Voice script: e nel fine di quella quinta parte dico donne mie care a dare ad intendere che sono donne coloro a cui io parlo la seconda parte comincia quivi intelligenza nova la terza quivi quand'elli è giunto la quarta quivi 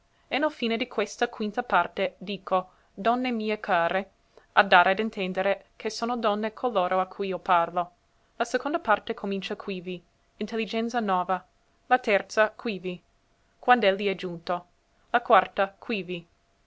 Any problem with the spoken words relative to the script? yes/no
yes